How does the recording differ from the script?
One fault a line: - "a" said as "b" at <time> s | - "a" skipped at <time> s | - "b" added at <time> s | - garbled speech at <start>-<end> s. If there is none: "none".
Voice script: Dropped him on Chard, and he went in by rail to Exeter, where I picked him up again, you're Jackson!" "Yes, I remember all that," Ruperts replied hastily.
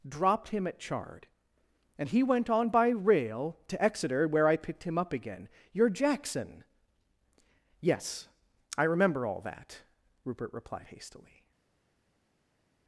- "on" said as "at" at 0.7 s
- "in" said as "on" at 2.5 s
- "Ruperts" said as "Rupert" at 10.2 s